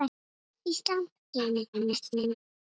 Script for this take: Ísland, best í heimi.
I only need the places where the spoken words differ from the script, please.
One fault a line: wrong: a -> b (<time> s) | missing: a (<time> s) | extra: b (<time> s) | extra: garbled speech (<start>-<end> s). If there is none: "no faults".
missing: best (1.1 s)
extra: garbled speech (1.7-2.3 s)